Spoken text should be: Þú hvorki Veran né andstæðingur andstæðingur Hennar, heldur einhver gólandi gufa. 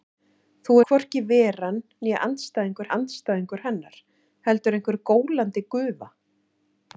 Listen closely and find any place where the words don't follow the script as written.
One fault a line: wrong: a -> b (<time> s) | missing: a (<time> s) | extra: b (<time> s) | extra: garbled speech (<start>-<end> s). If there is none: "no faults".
no faults